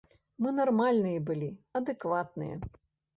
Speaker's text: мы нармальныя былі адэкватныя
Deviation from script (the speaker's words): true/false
false